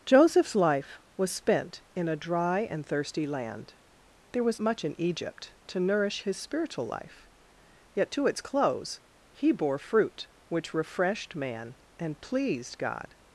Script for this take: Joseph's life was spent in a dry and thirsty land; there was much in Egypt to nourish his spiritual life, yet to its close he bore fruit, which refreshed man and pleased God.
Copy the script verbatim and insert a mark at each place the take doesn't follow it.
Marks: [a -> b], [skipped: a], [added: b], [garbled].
Joseph's life was spent in a dry and thirsty land; there was much in Egypt to nourish his spiritual life, yet to its close he bore fruit, which refreshed man and pleased God.